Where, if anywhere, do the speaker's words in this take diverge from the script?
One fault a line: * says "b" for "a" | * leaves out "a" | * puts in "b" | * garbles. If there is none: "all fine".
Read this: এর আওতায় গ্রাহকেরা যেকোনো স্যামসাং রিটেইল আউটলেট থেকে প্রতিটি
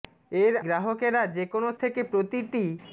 * leaves out "আওতায়"
* leaves out "স্যামসাং রিটেইল আউটলেট"